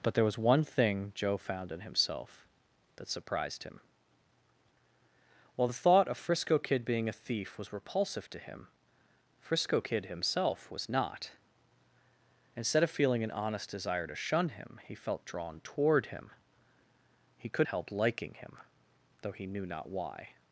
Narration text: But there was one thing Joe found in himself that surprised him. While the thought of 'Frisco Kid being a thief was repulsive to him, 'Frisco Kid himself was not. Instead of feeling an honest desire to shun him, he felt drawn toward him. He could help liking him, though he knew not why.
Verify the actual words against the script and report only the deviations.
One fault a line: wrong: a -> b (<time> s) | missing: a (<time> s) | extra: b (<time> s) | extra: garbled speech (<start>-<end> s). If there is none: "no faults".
no faults